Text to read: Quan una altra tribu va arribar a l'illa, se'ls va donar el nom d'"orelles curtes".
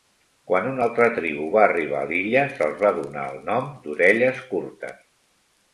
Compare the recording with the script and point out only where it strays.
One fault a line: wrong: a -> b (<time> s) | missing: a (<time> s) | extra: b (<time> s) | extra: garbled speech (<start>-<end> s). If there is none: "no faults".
no faults